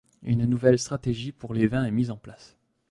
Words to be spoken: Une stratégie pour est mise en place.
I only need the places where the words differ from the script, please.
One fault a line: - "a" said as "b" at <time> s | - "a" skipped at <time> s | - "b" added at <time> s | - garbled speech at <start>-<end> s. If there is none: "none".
- "nouvelle" added at 0.5 s
- "les vins" added at 1.5 s